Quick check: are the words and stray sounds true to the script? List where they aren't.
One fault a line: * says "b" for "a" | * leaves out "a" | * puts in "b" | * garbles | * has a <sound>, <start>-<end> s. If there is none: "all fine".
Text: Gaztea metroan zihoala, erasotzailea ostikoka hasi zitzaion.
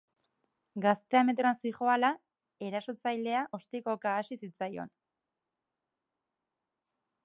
all fine